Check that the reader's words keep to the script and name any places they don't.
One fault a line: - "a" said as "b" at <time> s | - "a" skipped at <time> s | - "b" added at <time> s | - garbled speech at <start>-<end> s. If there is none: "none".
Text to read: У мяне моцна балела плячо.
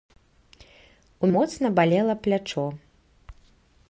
- "мяне" skipped at 1.3 s